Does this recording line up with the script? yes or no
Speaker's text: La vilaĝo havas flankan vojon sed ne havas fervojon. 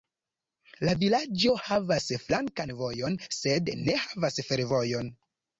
yes